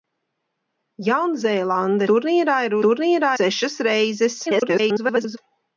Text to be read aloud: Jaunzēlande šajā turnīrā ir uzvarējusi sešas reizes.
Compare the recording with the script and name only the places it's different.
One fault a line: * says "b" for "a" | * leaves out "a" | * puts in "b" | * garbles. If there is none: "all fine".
* leaves out "šajā"
* says "turnīrā" for "uzvarējusi"
* garbles